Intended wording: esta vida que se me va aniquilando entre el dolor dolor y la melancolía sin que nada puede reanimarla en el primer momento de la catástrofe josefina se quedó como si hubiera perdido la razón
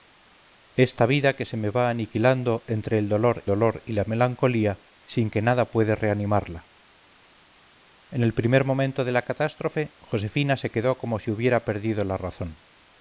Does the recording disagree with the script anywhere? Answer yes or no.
no